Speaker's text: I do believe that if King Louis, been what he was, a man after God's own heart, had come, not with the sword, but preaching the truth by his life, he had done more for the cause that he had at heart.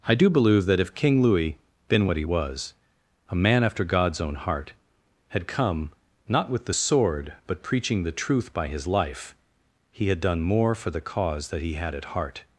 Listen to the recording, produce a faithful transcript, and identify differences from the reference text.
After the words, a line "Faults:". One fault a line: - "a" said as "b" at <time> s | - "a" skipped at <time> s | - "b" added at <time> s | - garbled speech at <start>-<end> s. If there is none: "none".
I do believe that if King Louis, been what he was, a man after God's own heart, had come, not with the sword, but preaching the truth by his life, he had done more for the cause that he had at heart.
Faults:
none